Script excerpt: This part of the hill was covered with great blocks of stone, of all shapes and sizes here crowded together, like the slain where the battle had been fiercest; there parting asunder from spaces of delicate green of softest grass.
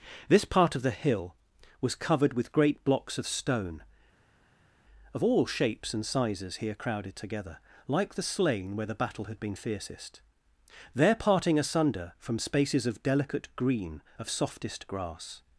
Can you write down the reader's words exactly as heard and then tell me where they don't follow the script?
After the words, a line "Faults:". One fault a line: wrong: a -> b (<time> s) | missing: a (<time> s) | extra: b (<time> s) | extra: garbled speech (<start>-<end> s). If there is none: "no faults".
This part of the hill was covered with great blocks of stone, of all shapes and sizes here crowded together, like the slain where the battle had been fiercest; there parting asunder from spaces of delicate green of softest grass.
Faults:
no faults